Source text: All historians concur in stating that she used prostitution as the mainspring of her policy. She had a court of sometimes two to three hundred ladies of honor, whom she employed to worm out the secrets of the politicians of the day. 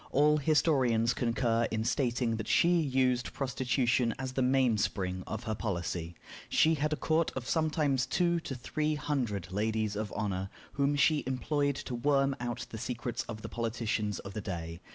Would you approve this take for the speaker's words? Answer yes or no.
yes